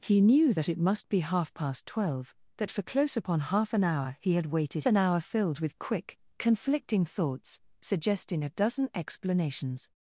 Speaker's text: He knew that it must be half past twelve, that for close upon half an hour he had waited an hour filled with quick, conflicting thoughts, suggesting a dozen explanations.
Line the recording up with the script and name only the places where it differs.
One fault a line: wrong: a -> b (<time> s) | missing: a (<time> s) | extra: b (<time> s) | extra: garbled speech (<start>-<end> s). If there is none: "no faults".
no faults